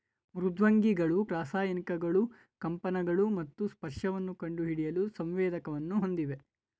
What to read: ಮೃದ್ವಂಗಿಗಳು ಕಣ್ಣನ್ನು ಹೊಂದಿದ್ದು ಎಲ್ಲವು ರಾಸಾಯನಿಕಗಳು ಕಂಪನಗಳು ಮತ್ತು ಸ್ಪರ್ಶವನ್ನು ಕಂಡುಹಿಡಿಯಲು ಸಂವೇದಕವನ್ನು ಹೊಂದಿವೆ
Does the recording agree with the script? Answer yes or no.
no